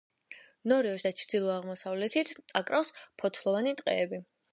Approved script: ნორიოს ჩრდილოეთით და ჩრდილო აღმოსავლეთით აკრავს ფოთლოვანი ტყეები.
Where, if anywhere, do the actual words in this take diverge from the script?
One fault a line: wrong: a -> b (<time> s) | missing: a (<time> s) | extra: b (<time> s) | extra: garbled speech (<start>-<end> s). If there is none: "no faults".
missing: ჩრდილოეთით (1.1 s)